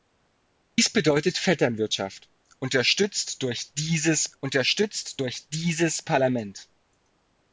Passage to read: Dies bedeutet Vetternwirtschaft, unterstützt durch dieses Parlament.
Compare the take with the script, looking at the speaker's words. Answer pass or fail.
fail